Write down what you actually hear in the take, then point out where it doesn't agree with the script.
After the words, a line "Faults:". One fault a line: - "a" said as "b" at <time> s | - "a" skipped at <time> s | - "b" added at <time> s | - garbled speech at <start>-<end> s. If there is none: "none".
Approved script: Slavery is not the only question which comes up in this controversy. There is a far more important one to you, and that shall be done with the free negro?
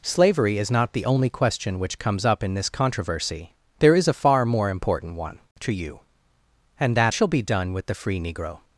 Slavery is not the only question which comes up in this controversy. There is a far more important one to you, and that shall be done with the free negro?
Faults:
none